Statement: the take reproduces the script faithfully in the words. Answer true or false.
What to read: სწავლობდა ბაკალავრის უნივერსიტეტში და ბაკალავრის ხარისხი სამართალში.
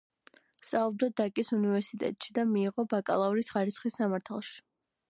false